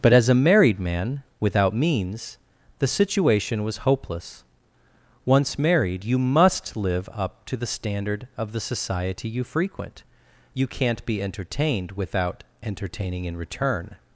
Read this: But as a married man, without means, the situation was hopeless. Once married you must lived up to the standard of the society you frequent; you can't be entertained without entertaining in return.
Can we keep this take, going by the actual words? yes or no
no